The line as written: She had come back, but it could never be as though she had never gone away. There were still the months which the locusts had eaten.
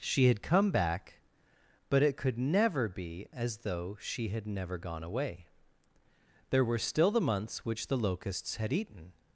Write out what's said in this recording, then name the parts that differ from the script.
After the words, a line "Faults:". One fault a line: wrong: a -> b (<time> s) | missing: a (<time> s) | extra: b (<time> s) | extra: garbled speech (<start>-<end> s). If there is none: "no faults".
She had come back, but it could never be as though she had never gone away. There were still the months which the locusts had eaten.
Faults:
no faults